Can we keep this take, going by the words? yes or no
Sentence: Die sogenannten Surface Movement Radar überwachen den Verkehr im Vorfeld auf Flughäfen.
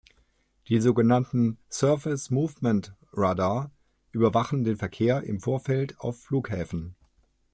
yes